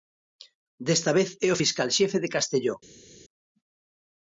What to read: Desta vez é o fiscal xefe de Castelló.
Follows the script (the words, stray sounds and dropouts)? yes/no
yes